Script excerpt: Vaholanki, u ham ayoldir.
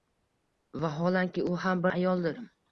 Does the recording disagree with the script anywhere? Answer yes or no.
no